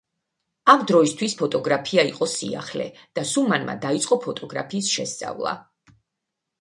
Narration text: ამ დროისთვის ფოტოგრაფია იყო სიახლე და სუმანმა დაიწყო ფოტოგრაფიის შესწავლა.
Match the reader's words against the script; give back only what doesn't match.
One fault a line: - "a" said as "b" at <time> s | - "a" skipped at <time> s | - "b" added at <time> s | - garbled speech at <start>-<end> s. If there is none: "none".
none